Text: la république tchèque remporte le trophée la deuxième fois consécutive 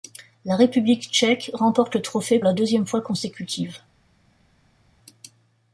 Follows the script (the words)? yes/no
yes